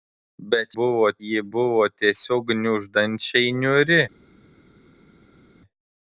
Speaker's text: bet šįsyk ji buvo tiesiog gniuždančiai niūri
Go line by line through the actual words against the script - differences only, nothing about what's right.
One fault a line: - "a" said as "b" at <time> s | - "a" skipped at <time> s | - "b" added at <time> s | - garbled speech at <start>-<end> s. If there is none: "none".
- "šįsyk" said as "buvo" at 0.8 s